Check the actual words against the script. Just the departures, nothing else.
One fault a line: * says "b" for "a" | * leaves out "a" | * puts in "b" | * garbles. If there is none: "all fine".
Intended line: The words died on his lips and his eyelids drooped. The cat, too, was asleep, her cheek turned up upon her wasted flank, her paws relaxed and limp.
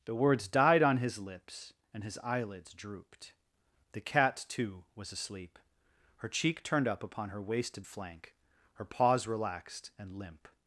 all fine